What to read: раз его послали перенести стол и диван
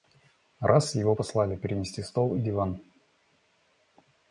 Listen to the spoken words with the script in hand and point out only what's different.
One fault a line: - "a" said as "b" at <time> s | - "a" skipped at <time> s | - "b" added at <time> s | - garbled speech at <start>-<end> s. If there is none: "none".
none